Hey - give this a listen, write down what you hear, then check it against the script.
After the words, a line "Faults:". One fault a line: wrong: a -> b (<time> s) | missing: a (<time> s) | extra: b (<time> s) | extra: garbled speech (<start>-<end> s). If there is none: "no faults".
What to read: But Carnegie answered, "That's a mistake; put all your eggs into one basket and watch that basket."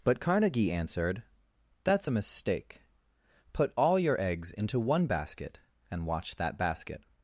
But Carnegie answered, "That's a mistake; put all your eggs into one basket and watch that basket."
Faults:
no faults